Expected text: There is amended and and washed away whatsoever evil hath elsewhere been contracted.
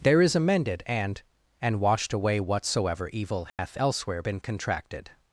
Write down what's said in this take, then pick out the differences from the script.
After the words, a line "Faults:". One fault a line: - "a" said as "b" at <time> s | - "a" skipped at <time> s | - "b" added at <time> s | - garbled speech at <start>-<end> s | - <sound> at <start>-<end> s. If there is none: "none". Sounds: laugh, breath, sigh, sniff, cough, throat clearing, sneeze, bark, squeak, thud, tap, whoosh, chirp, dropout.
There is amended and and washed away whatsoever evil hath elsewhere been contracted.
Faults:
- dropout at 3.5-3.6 s